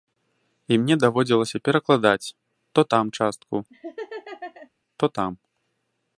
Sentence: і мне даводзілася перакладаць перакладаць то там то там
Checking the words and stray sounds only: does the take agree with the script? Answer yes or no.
no